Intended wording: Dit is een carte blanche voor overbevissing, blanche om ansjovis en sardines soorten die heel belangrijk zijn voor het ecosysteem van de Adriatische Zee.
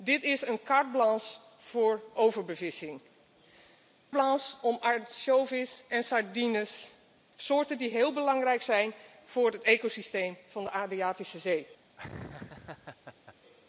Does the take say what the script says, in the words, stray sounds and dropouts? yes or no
no